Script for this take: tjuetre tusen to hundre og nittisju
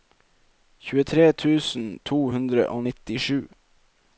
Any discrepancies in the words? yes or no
no